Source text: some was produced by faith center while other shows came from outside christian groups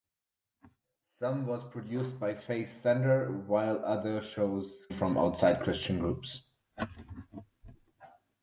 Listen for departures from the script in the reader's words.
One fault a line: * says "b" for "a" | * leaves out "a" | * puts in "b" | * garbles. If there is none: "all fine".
* leaves out "came"